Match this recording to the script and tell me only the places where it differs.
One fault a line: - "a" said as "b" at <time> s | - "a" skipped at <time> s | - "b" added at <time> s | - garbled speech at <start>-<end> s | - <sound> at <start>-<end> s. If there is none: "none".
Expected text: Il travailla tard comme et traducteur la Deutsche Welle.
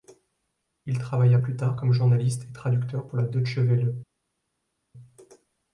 - "plus" added at 1.3 s
- "journaliste" added at 1.9 s
- "pour" added at 3.1 s